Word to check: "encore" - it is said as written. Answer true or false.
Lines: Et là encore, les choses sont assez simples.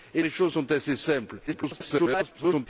false